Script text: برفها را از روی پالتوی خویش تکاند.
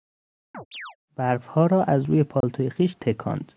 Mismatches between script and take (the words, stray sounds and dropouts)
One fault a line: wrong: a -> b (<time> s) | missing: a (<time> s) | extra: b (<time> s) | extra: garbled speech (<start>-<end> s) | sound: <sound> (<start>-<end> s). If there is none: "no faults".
sound: chirp (0.5-1.0 s)
sound: dropout (2.4-2.4 s)